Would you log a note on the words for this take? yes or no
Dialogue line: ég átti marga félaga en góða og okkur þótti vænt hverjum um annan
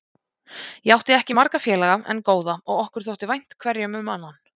yes